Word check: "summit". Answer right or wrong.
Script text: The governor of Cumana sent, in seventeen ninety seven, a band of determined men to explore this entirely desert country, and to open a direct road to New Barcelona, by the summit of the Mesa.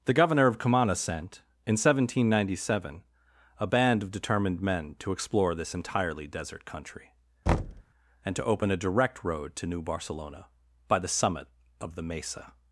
right